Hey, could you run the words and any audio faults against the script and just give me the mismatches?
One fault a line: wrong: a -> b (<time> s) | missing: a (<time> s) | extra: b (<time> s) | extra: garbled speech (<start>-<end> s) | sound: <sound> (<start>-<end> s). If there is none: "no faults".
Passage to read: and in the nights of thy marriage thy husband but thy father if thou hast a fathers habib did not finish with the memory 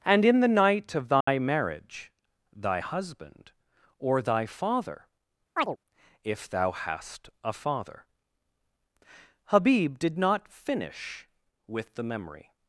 wrong: nights -> night (0.5 s)
sound: dropout (1.2-1.3 s)
wrong: but -> or (4.0 s)
sound: chirp (5.6-5.8 s)
wrong: fathers -> father (7.5 s)